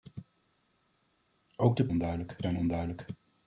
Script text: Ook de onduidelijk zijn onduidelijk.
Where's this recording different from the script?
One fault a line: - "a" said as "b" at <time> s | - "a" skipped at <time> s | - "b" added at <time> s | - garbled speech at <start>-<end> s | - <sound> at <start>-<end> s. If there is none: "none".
none